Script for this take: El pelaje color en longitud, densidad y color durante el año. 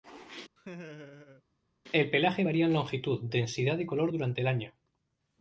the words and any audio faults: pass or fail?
fail